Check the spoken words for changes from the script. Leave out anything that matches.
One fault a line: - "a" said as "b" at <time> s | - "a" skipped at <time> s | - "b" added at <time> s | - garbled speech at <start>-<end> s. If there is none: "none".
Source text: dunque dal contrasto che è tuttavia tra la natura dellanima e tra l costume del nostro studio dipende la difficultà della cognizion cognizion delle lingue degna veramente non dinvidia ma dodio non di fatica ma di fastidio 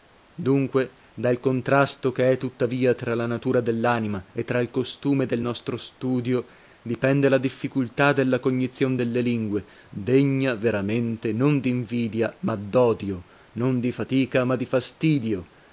- "cognizion" skipped at 9.0 s